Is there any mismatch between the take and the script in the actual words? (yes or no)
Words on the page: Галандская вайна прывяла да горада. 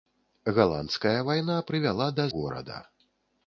no